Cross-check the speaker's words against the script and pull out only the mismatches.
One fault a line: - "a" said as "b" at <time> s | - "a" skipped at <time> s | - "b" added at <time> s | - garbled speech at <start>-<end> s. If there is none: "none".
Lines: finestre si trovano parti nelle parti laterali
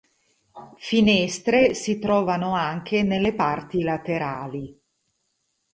- "parti" said as "anche" at 2.5 s